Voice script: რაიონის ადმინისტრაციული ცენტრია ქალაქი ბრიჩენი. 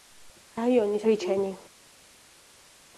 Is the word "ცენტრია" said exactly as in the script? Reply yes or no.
no